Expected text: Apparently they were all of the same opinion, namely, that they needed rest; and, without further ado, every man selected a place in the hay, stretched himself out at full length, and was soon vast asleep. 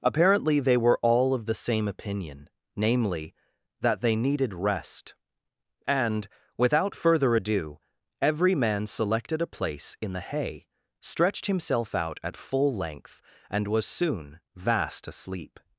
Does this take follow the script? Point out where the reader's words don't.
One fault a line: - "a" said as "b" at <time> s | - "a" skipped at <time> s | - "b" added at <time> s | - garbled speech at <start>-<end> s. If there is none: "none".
none